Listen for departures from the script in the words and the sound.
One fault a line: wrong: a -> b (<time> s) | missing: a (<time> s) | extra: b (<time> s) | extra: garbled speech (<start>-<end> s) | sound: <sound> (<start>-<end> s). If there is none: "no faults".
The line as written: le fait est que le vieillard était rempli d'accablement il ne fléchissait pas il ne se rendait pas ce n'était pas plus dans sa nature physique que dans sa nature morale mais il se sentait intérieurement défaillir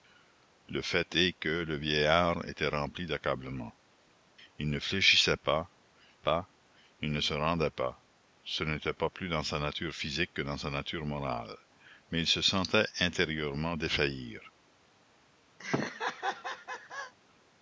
extra: pas (6.2 s)
sound: laugh (15.6-17.1 s)